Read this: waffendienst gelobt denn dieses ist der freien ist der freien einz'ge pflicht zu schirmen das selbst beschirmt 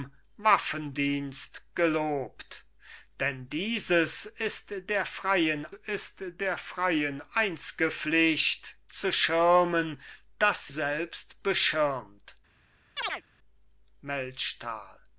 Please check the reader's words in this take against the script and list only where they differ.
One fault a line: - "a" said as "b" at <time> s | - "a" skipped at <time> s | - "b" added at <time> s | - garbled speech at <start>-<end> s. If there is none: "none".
none